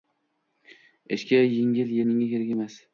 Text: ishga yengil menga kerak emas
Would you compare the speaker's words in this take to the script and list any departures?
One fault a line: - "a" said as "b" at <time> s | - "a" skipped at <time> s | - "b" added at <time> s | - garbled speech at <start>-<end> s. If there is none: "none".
none